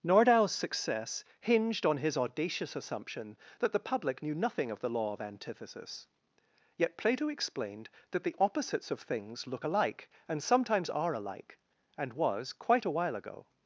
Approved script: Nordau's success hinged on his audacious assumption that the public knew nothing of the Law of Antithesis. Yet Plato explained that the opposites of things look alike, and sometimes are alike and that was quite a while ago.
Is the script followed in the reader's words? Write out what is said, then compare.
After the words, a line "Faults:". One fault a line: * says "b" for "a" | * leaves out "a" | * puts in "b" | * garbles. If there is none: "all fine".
Nordau's success hinged on his audacious assumption that the public knew nothing of the Law of Antithesis. Yet Plato explained that the opposites of things look alike, and sometimes are alike and was quite a while ago.
Faults:
* leaves out "that"